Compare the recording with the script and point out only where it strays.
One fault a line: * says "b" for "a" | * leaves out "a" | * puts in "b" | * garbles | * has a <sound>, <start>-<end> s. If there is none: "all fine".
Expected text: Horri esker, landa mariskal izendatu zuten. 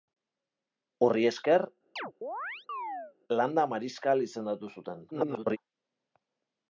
* has a chirp, 2.0-3.1 s
* garbles